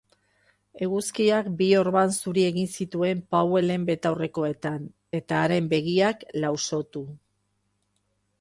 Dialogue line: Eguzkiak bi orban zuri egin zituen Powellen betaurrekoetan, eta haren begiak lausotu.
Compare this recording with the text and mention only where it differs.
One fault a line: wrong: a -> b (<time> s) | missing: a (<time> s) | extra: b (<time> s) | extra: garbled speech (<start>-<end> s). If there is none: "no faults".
no faults